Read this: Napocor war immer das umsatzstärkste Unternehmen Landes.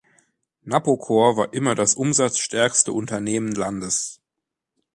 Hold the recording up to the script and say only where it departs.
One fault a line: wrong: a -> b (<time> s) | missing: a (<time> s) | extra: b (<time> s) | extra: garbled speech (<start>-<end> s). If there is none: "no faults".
no faults